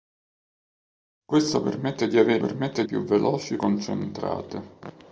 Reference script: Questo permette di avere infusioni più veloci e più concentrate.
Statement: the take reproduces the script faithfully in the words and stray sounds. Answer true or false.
false